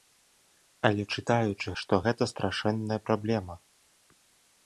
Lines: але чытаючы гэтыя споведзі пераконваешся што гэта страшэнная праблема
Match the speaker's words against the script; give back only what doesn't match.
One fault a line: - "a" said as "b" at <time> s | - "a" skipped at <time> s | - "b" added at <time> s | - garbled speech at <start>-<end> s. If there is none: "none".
- "гэтыя споведзі пераконваешся" skipped at 1.7 s